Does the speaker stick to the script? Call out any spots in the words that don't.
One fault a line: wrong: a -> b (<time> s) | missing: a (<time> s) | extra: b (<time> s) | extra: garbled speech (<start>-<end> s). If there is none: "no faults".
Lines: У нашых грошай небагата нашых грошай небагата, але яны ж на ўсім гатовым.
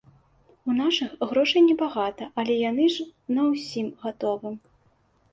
missing: нашых грошай небагата (2.3 s)